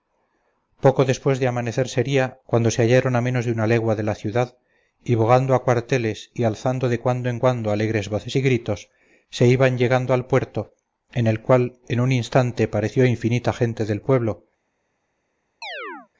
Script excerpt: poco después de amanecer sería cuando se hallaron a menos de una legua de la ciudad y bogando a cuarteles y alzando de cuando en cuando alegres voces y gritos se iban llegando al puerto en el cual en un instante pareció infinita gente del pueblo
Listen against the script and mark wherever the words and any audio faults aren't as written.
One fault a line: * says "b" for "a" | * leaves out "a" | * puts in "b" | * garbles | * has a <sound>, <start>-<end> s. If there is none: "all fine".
* has a chirp, 15.6-16.1 s